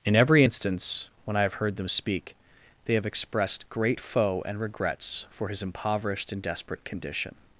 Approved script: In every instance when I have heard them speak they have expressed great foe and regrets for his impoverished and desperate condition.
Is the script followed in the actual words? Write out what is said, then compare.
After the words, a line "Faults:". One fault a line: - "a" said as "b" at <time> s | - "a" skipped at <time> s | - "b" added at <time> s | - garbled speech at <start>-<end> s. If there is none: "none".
In every instance when I have heard them speak they have expressed great foe and regrets for his impoverished and desperate condition.
Faults:
none